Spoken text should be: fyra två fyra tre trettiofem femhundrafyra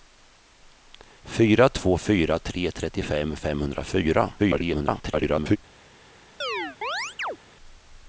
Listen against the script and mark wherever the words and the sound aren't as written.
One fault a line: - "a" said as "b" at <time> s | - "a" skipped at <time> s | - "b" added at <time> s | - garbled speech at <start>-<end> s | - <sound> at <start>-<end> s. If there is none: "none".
- garbled speech at 4.4-5.6 s
- chirp at 6.4-7.4 s